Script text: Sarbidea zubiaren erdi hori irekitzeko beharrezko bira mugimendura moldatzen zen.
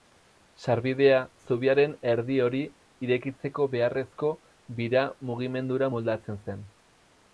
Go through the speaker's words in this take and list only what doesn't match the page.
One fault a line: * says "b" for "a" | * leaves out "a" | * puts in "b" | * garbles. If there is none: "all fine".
all fine